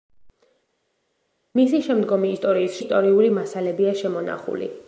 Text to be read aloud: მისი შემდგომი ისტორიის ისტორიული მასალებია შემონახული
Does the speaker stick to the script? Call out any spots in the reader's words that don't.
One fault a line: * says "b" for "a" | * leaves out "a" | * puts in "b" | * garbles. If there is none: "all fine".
all fine